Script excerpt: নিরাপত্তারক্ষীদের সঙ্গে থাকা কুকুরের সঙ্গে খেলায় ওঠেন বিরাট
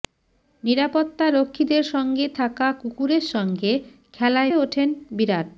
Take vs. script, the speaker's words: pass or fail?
pass